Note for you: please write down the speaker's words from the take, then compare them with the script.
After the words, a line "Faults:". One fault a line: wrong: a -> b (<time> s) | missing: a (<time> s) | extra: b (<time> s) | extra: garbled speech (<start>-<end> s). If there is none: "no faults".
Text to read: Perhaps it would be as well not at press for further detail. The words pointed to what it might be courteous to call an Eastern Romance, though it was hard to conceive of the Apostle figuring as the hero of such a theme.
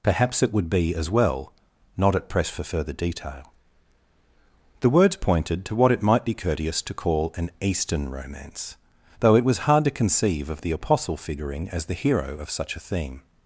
Perhaps it would be as well not at press for further detail. The words pointed to what it might be courteous to call an Eastern Romance, though it was hard to conceive of the Apostle figuring as the hero of such a theme.
Faults:
no faults